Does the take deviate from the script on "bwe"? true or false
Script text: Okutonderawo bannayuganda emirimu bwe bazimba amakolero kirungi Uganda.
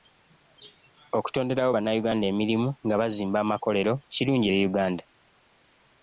true